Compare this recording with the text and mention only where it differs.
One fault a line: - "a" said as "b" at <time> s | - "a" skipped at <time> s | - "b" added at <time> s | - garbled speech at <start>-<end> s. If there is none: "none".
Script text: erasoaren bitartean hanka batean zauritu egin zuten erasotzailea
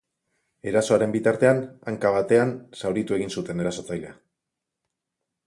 none